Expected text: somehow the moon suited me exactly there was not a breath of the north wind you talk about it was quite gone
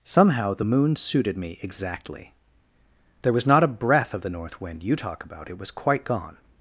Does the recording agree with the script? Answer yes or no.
yes